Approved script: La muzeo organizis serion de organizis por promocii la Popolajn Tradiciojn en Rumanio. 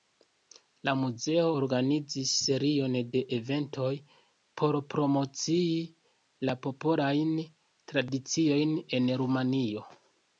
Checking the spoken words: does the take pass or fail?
fail